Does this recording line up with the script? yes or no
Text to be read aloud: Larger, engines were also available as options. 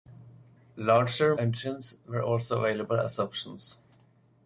yes